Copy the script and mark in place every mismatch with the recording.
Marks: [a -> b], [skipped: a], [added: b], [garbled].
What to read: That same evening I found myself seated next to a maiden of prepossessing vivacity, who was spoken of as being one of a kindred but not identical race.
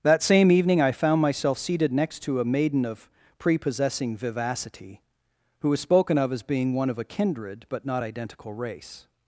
That same evening I found myself seated next to a maiden of prepossessing vivacity, who was spoken of as being one of a kindred but not identical race.